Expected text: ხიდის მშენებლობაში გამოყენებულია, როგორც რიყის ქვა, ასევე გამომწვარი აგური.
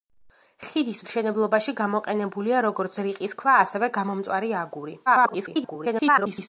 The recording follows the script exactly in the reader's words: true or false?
false